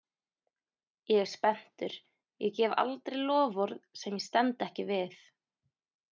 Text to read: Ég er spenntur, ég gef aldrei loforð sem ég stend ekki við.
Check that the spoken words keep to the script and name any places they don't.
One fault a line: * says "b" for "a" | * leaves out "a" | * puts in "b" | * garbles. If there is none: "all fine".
all fine